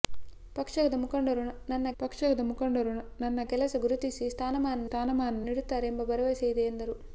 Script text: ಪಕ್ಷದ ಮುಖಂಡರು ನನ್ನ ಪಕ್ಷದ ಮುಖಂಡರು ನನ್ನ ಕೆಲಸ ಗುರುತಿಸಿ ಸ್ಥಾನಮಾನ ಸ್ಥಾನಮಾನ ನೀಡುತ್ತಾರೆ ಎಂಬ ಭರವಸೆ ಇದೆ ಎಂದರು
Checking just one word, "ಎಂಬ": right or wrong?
right